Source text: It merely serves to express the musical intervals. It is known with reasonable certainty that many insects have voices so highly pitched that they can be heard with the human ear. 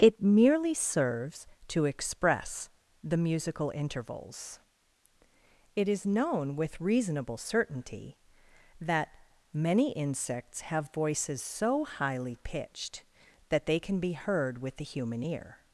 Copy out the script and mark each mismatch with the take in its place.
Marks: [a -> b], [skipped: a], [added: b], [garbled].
It merely serves to express the musical intervals. It is known with reasonable certainty that many insects have voices so highly pitched that they can be heard with the human ear.